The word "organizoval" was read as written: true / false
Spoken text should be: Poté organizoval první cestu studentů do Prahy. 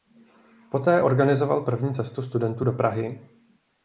true